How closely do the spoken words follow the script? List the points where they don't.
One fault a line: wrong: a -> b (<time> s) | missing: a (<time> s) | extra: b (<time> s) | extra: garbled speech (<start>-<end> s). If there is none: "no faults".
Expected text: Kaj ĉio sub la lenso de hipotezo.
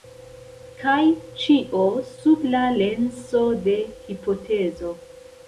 no faults